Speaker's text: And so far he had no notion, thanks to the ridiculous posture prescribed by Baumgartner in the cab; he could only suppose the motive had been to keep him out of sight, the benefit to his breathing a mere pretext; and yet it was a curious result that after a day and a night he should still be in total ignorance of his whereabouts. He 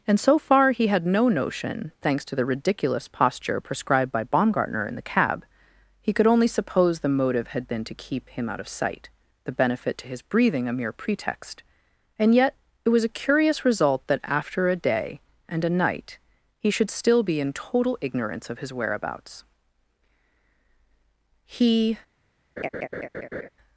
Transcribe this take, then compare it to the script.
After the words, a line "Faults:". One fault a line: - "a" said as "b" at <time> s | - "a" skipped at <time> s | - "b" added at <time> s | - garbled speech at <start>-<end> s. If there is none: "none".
And so far he had no notion, thanks to the ridiculous posture prescribed by Baumgartner in the cab; he could only suppose the motive had been to keep him out of sight, the benefit to his breathing a mere pretext; and yet it was a curious result that after a day and a night he should still be in total ignorance of his whereabouts. He
Faults:
none